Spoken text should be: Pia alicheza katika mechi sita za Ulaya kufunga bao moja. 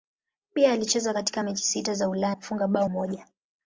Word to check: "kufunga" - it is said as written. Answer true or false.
true